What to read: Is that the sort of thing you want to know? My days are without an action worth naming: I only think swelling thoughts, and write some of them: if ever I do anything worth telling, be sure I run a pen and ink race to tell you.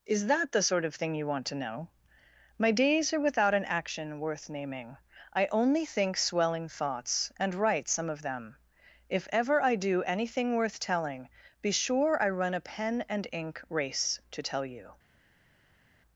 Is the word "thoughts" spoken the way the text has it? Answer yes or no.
yes